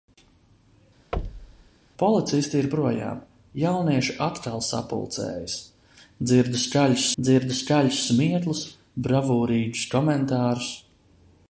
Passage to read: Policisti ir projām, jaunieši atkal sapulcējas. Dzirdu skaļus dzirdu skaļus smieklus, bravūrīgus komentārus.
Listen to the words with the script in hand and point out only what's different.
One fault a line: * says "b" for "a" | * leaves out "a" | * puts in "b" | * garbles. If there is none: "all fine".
all fine